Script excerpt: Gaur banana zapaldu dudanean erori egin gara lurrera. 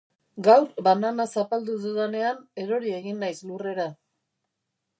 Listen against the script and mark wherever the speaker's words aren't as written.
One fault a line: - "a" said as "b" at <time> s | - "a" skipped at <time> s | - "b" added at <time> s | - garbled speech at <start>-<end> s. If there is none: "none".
- "gara" said as "naiz" at 3.3 s